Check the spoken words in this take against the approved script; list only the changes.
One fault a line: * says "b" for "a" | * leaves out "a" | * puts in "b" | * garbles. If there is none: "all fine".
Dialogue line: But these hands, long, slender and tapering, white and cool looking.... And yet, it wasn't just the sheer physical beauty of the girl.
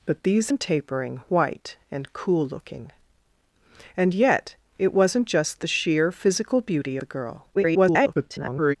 * leaves out "hands long slender"
* leaves out "of"
* garbles